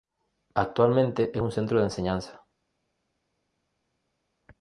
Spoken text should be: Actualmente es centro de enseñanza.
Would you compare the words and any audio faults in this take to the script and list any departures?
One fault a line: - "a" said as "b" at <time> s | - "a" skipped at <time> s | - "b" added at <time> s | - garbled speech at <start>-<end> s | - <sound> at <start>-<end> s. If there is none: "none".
- "un" added at 1.4 s